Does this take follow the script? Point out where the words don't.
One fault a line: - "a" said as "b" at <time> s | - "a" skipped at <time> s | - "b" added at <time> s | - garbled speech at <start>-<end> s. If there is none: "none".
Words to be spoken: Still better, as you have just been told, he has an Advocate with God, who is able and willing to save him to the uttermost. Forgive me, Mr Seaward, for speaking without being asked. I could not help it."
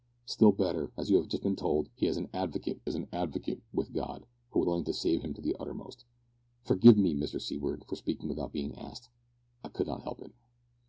- "has an Advocate" added at 2.8 s
- "is able and" skipped at 4.6 s